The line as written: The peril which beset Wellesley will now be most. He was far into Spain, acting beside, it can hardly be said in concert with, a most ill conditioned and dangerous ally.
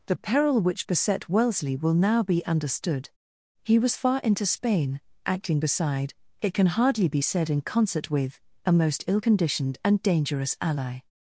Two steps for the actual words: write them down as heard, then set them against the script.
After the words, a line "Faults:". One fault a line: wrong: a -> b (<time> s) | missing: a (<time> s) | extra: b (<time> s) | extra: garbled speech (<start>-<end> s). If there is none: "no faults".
The peril which beset Wellesley will now be understood. He was far into Spain, acting beside, it can hardly be said in concert with, a most ill conditioned and dangerous ally.
Faults:
wrong: most -> understood (2.5 s)